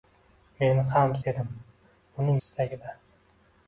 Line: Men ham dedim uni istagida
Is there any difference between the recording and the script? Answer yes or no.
no